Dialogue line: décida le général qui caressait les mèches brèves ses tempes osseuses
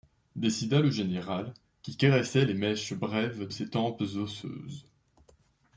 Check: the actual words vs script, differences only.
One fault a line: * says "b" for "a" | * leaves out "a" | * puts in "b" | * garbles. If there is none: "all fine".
all fine